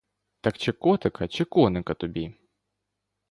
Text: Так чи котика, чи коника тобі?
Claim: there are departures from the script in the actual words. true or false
false